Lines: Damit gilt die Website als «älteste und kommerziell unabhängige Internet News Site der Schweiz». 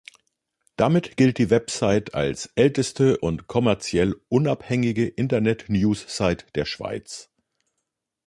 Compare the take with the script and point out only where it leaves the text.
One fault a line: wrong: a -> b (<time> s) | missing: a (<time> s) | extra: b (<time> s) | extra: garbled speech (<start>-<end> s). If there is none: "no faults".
no faults